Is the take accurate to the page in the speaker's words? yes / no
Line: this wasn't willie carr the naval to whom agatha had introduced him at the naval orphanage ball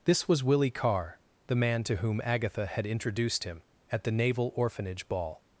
no